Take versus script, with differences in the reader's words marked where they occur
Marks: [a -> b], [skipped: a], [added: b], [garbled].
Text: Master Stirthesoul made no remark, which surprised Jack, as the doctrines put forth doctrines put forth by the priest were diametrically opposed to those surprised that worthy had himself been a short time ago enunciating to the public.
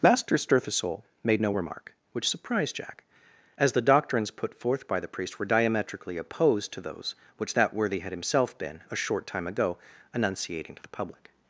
Master Stirthesoul made no remark, which surprised Jack, as the doctrines put forth [skipped: doctrines put forth] by the priest were diametrically opposed to those [surprised -> which] that worthy had himself been a short time ago enunciating to the public.